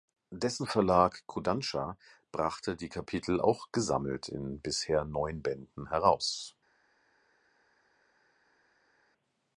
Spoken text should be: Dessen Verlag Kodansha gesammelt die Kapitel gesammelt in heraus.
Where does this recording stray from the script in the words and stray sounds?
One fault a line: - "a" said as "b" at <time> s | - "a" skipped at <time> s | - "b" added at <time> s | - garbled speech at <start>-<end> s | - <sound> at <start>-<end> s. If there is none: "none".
- "gesammelt" said as "brachte" at 2.3 s
- "auch" added at 3.4 s
- "bisher neun Bänden" added at 4.6 s